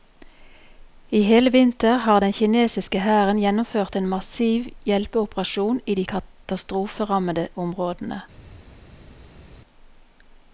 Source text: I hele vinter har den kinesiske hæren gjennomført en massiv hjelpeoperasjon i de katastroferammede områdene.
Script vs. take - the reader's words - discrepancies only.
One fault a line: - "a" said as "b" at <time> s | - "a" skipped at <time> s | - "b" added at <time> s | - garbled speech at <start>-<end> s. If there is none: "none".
none